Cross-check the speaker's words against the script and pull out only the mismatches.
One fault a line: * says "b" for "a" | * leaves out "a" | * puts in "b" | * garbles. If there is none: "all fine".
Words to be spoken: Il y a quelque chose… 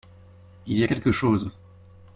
all fine